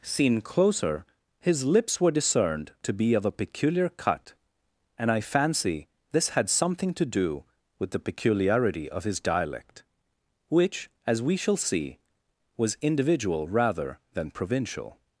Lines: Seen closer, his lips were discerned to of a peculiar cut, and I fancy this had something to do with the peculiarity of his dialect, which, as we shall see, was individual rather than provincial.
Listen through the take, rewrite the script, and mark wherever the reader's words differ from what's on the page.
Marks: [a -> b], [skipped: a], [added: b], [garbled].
Seen closer, his lips were discerned to [added: be] of a peculiar cut, and I fancy this had something to do with the peculiarity of his dialect, which, as we shall see, was individual rather than provincial.